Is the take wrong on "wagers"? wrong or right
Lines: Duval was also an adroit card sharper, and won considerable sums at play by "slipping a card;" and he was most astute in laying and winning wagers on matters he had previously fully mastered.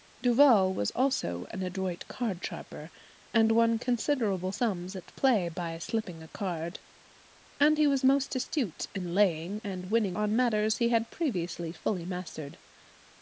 wrong